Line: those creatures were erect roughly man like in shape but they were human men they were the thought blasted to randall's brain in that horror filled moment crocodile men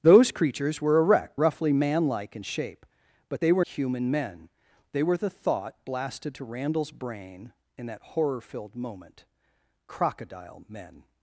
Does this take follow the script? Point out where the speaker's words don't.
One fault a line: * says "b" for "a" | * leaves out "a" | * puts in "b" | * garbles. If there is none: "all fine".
all fine